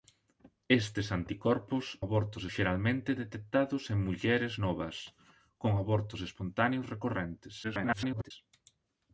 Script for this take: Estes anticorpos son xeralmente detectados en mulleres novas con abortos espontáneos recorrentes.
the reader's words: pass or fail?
fail